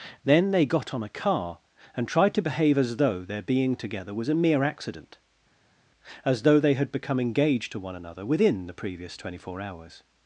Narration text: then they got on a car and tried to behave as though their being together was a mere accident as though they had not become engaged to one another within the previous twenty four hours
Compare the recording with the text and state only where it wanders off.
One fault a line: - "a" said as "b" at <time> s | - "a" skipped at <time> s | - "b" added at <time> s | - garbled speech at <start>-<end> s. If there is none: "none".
- "not" skipped at 6.9 s